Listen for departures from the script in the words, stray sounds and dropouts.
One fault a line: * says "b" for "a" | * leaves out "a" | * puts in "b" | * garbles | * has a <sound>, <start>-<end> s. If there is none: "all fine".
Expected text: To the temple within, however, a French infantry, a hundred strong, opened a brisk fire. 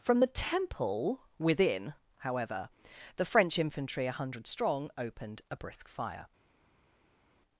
* says "From" for "To"
* says "the" for "a"